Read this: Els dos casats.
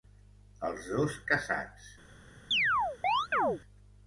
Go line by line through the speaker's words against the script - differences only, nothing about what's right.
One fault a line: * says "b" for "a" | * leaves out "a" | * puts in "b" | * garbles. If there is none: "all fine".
all fine